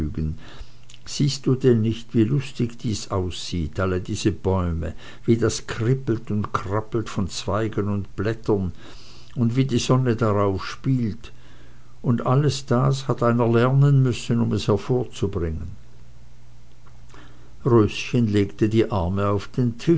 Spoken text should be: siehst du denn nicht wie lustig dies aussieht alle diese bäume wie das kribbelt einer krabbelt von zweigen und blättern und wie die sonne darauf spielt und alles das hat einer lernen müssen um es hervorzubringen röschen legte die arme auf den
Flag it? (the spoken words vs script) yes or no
yes